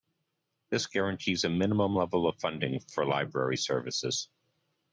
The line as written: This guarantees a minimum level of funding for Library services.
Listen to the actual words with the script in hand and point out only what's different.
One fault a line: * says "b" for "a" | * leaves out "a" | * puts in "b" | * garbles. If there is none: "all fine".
all fine